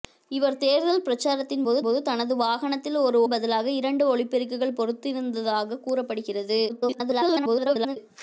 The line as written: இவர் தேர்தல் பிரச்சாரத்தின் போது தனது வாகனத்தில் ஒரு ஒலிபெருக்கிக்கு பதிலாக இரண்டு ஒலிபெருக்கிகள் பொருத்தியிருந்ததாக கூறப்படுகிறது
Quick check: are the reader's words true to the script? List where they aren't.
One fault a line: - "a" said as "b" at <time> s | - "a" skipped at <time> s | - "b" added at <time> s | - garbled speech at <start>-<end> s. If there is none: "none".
- "போது" added at 1.8 s
- "ஒலிபெருக்கிக்கு" skipped at 3.2 s
- garbled speech at 6.7-8.0 s